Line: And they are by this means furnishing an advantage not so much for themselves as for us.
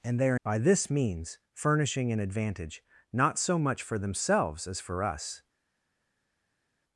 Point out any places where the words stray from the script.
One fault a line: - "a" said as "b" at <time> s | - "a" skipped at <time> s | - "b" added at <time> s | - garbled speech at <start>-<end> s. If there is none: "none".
none